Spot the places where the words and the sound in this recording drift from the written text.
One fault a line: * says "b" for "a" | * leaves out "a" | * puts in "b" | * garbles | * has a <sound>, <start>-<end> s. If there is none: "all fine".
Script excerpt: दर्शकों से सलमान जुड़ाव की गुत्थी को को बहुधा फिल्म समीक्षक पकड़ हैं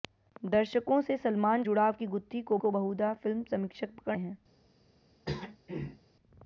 * has a throat clearing, 5.3-6.0 s